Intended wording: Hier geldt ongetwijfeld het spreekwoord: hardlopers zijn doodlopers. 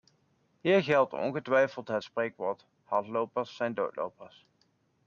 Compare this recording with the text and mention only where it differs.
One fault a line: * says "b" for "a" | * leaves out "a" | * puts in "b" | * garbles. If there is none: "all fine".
all fine